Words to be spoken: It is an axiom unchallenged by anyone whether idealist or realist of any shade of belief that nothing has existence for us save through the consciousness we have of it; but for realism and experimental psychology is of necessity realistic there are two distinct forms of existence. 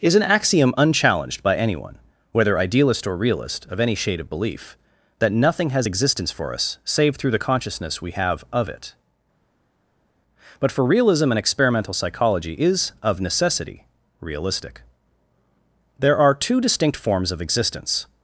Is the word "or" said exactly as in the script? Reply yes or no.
yes